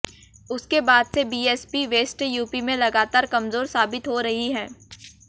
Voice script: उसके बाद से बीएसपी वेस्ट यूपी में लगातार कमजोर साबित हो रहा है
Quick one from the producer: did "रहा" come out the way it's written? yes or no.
no